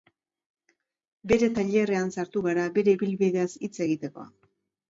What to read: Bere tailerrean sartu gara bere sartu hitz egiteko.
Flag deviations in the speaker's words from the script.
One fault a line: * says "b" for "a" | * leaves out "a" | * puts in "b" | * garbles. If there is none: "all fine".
* says "ibilbideaz" for "sartu"